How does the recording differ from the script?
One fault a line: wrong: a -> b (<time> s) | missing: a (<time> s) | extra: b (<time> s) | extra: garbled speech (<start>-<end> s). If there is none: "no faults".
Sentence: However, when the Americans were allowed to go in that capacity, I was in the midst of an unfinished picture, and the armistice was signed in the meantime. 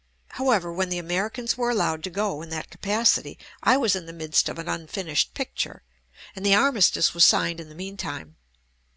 no faults